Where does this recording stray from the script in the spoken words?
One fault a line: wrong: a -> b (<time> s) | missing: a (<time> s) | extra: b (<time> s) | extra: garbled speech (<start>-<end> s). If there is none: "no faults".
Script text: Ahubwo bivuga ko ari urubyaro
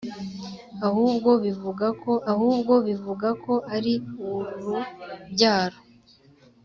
extra: ahubwo bivuga ko (2.3 s)